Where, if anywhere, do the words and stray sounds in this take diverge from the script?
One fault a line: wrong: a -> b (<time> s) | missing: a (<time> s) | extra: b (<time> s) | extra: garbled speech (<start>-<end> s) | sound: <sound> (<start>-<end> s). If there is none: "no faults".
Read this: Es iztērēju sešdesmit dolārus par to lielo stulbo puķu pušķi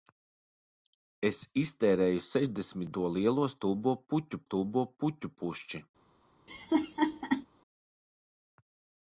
wrong: dolārus par to lielo -> to lielo stulbo puķu (3.0 s)
sound: laugh (6.5-7.5 s)